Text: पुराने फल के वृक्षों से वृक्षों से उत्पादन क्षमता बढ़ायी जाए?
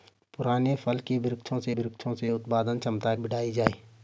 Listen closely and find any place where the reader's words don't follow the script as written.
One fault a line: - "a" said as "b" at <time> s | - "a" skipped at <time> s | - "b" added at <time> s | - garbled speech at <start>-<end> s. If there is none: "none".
none